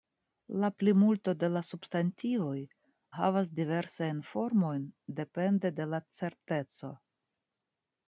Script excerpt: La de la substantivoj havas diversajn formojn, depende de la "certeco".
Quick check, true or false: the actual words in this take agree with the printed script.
false